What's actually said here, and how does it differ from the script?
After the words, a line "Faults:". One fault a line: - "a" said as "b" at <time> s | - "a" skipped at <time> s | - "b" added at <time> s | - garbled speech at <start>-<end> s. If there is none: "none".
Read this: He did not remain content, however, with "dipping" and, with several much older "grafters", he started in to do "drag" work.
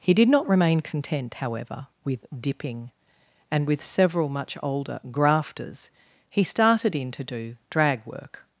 He did not remain content, however, with "dipping" and, with several much older "grafters", he started in to do "drag" work.
Faults:
none